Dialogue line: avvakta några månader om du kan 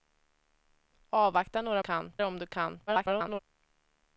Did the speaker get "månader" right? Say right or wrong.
wrong